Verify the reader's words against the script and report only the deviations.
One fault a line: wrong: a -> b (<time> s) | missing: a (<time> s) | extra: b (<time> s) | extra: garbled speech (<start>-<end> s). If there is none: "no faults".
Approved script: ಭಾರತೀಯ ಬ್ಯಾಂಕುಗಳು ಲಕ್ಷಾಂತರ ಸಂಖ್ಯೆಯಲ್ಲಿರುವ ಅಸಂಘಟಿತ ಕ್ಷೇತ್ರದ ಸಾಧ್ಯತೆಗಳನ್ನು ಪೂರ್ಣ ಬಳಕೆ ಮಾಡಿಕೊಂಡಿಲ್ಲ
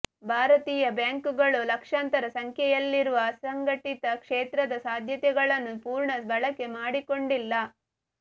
no faults